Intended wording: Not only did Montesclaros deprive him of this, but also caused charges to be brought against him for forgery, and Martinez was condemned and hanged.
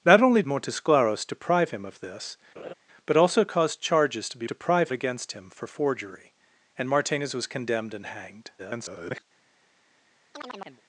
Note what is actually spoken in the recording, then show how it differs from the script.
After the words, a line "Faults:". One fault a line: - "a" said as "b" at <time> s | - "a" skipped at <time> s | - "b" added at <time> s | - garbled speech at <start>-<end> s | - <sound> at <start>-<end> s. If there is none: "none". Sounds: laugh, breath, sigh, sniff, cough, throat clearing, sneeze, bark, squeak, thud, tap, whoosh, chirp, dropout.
Not only Montesclaros deprive him of this, but also caused charges to be deprive against him for forgery, and Martinez was condemned and hanged. [garbled]
Faults:
- "did" skipped at 0.4 s
- laugh at 2.6-2.7 s
- "brought" said as "deprive" at 4.4 s
- garbled speech at 8.6-9.2 s
- chirp at 10.3-10.8 s